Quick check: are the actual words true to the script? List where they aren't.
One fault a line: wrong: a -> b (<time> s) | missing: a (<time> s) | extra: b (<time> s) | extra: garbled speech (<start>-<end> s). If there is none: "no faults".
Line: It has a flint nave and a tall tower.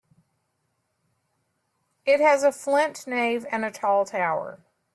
no faults